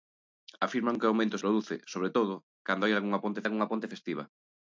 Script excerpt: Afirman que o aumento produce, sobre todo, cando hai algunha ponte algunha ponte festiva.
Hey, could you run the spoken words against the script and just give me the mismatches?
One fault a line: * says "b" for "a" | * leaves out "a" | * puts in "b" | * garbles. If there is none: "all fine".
all fine